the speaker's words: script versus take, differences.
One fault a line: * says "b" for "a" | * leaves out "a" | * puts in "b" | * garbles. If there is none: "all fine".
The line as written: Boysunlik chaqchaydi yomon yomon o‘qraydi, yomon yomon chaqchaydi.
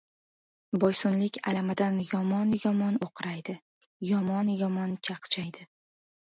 * says "alamidan" for "chaqchaydi"